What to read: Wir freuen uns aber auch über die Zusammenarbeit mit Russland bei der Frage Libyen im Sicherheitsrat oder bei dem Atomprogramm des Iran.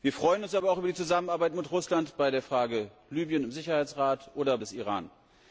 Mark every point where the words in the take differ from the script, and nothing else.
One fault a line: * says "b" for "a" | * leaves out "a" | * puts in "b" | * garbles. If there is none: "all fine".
* leaves out "bei dem Atomprogramm"